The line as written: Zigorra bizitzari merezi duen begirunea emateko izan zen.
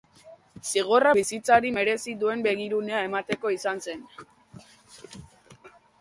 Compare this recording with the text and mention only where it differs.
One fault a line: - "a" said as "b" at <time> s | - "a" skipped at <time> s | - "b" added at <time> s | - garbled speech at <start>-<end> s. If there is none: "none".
none